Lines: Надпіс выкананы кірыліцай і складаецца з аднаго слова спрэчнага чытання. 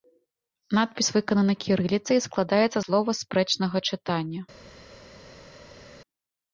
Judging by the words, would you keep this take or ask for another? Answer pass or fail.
fail